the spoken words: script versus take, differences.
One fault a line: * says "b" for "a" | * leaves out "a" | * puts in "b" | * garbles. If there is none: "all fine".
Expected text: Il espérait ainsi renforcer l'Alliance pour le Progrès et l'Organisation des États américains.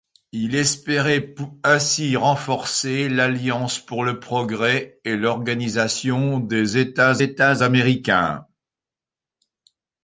* puts in "États"